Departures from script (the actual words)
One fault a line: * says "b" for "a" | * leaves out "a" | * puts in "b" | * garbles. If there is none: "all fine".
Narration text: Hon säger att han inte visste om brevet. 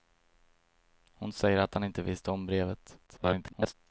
* garbles